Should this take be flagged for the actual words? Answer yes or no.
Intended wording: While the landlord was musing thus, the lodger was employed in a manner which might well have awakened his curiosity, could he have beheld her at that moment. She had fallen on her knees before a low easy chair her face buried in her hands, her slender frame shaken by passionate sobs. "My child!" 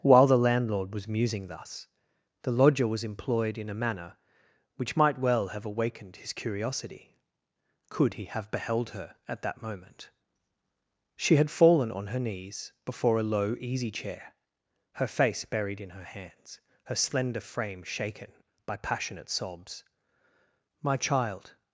no